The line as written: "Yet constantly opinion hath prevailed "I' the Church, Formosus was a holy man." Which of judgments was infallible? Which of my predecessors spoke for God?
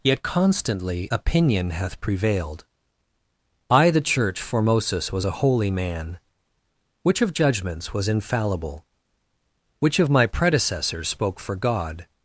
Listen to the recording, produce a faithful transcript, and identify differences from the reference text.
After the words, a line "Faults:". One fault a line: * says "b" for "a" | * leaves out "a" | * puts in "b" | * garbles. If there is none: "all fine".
"Yet constantly opinion hath prevailed "I' the Church, Formosus was a holy man." Which of judgments was infallible? Which of my predecessors spoke for God?
Faults:
all fine